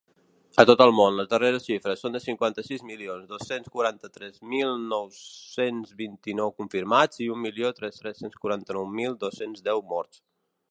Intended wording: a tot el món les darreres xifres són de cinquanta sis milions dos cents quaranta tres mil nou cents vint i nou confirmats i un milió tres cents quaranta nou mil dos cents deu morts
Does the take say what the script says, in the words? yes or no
no